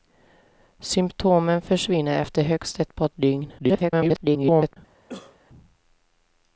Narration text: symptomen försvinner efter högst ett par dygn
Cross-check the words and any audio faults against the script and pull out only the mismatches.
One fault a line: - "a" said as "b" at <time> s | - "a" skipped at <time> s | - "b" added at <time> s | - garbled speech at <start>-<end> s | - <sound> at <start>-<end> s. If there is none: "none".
- garbled speech at 3.6-4.8 s
- cough at 5.1-5.4 s